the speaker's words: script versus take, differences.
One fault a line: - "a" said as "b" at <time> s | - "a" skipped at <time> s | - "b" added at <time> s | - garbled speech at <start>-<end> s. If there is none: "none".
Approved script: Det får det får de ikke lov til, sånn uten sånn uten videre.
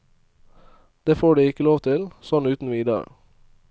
- "det får" skipped at 1.4 s
- "sånn uten" skipped at 2.7 s